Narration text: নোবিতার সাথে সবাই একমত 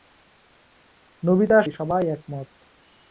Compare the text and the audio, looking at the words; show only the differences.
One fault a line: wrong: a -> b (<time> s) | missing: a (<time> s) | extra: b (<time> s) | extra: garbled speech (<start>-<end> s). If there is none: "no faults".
missing: সাথে (1.6 s)